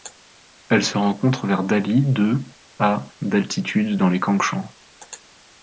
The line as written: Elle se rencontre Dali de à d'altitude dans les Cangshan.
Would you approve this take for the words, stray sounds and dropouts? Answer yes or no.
no